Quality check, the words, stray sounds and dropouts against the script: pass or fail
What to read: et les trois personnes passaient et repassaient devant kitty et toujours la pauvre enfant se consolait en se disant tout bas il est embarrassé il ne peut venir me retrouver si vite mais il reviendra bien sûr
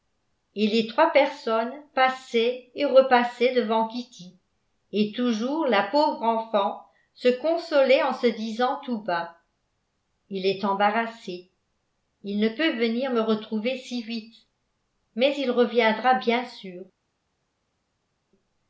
pass